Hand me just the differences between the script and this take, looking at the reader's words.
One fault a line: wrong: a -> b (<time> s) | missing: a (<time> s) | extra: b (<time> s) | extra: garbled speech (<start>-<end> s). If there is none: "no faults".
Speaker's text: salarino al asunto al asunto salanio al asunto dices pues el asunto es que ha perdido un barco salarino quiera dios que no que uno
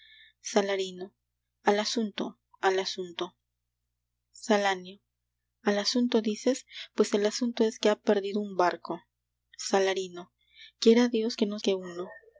no faults